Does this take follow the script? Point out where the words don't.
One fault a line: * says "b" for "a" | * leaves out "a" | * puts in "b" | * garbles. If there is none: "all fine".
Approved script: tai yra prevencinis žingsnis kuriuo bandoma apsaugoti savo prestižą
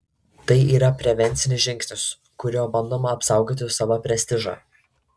all fine